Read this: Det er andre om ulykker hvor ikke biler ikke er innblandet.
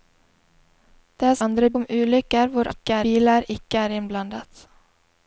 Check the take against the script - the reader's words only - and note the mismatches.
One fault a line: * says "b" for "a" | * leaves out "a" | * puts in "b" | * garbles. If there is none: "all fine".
all fine